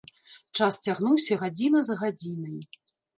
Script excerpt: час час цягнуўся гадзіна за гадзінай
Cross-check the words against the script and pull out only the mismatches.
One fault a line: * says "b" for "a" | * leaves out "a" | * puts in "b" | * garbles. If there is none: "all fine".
* leaves out "час"